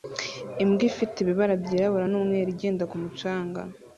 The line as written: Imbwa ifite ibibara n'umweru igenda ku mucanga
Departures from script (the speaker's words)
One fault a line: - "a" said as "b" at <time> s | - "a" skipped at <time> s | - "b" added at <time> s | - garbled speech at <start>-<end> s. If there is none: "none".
- "byirabura" added at 1.6 s